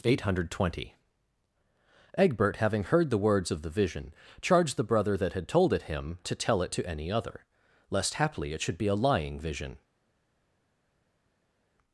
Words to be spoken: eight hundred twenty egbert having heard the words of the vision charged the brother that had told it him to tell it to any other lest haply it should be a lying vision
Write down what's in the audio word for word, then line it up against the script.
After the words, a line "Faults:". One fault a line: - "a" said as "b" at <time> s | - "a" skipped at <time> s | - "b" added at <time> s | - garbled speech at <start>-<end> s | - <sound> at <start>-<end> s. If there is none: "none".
eight hundred twenty egbert having heard the words of the vision charged the brother that had told it him to tell it to any other lest haply it should be a lying vision
Faults:
none